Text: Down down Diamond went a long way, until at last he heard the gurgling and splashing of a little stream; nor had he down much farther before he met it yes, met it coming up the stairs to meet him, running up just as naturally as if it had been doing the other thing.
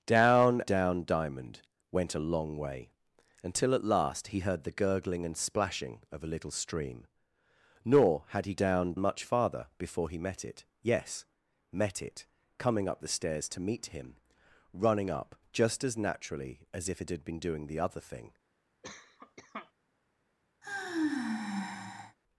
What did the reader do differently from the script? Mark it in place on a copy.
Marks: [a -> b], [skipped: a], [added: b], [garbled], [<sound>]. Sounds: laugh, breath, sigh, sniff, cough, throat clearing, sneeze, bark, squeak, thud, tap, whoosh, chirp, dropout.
Down down Diamond went a long way, until at last he heard the gurgling and splashing of a little stream; nor had he down much farther before he met it yes, met it coming up the stairs to meet him, running up just as naturally as if it had been doing the other thing. [cough] [sigh]